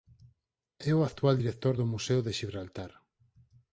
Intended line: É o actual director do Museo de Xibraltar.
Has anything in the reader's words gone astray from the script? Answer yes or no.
no